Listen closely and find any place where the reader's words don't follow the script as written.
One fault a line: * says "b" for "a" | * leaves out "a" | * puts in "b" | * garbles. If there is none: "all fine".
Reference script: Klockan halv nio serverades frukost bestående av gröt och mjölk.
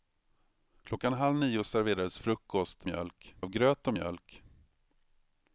* says "mjölk" for "bestående"